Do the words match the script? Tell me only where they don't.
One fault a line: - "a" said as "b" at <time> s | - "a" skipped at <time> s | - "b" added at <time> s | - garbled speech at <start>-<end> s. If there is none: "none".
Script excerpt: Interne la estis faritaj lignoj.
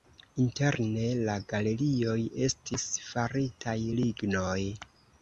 - "galerioj" added at 1.5 s